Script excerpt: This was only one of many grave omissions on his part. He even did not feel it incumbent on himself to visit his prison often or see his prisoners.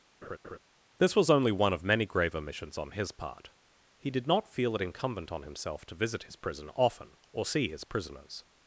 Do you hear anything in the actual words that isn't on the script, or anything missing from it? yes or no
yes